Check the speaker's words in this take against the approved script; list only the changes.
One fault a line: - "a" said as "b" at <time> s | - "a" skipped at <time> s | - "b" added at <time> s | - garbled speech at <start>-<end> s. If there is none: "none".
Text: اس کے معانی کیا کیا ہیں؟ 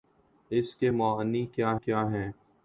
none